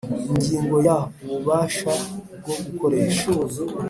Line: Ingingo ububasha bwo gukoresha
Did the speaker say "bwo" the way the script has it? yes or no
yes